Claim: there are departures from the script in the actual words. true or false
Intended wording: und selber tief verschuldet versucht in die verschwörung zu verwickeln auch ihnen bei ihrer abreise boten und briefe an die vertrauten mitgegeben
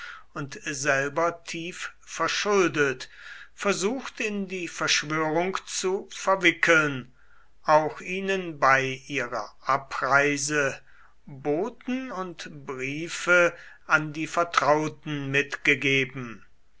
false